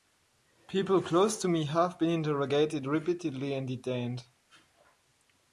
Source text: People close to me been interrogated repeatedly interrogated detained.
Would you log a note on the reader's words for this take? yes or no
yes